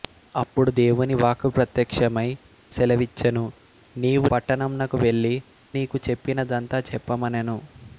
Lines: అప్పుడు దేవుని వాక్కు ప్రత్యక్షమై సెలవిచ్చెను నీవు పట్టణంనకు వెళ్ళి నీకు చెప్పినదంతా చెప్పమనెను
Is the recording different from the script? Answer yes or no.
no